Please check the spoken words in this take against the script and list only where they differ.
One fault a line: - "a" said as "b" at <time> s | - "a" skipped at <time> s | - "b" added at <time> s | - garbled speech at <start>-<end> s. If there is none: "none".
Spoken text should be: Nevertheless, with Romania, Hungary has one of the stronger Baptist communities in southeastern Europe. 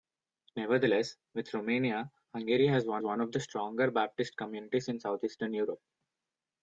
- "one" added at 3.0 s